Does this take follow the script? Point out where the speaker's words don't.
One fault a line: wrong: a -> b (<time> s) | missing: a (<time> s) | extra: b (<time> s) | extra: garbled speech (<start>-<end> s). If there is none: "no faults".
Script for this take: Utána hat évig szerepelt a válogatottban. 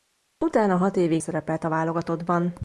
no faults